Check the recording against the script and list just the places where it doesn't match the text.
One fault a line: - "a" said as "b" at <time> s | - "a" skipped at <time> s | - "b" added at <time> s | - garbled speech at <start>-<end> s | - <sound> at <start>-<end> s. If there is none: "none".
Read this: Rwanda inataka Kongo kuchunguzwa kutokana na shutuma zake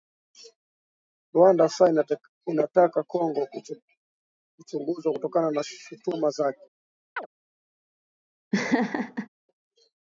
- "sasa" added at 1.7 s
- chirp at 7.2-7.3 s
- laugh at 8.5-9.3 s